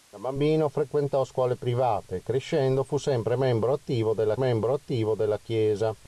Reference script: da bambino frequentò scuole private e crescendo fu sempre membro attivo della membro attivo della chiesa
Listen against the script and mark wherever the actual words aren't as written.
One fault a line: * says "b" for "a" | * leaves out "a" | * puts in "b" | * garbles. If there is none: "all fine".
all fine